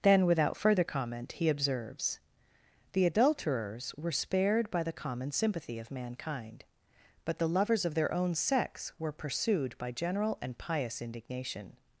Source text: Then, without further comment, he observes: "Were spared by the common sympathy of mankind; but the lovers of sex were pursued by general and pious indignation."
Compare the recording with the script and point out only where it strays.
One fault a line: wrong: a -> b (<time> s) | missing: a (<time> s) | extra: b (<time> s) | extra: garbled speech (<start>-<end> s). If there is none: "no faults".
extra: The adulterers (2.9 s)
extra: their own (7.9 s)